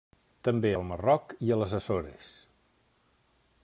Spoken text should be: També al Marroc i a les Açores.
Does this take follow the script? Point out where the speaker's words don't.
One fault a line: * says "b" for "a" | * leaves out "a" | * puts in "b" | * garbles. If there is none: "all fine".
all fine